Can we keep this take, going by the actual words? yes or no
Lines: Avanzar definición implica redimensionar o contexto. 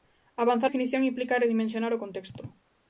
yes